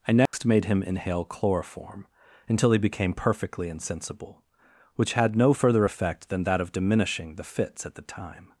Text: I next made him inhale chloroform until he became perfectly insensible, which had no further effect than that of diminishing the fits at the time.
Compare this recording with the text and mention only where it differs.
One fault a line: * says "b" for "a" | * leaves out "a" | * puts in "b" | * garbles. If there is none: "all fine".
all fine